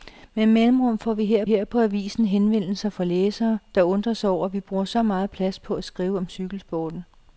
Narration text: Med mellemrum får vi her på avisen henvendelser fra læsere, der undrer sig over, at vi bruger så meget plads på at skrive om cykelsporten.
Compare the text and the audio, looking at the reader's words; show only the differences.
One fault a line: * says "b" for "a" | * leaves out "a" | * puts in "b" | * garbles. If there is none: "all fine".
* puts in "her"